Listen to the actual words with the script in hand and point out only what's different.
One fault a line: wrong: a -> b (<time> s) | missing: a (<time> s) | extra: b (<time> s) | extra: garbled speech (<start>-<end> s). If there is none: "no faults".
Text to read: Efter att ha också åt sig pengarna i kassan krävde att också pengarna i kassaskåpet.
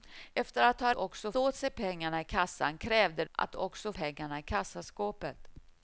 no faults